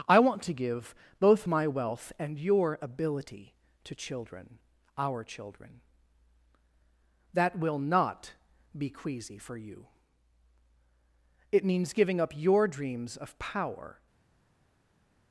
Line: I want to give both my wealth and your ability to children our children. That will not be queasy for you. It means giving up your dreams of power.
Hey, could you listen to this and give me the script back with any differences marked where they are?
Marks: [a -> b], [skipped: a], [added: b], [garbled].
I want to give both my wealth and your ability to children our children. That will not be queasy for you. It means giving up your dreams of power.